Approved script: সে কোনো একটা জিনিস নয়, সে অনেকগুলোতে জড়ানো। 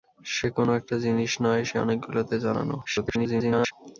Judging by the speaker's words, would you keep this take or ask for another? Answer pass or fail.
fail